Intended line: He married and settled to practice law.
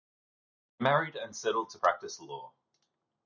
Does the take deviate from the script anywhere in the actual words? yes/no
no